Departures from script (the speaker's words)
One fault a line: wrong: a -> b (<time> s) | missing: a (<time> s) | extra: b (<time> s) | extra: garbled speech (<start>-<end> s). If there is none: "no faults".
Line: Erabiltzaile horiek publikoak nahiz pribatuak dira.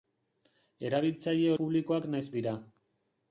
missing: horiek (1.5 s)
missing: pribatuak (2.3 s)